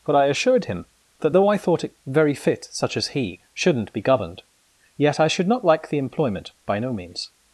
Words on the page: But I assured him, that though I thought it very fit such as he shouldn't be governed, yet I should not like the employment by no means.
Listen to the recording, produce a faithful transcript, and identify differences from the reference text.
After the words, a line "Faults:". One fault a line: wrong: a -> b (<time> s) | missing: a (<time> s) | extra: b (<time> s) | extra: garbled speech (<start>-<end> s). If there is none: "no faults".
But I assured him, that though I thought it very fit such as he shouldn't be governed, yet I should not like the employment by no means.
Faults:
no faults